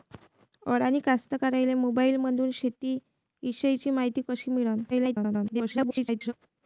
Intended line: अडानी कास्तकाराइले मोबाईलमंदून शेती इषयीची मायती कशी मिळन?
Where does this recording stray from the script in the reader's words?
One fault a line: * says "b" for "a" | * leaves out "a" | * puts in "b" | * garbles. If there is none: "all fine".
* garbles